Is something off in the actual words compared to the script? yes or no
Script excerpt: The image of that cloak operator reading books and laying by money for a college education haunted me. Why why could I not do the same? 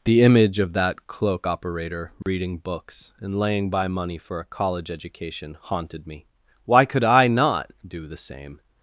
yes